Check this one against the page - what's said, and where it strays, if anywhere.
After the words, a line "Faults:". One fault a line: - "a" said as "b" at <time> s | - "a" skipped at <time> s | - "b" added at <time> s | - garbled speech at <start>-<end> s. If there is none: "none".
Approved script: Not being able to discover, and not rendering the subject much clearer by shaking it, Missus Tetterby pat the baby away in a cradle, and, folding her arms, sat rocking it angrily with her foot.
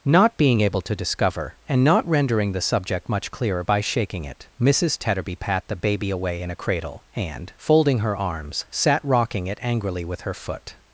Not being able to discover, and not rendering the subject much clearer by shaking it, Missus Tetterby pat the baby away in a cradle, and, folding her arms, sat rocking it angrily with her foot.
Faults:
none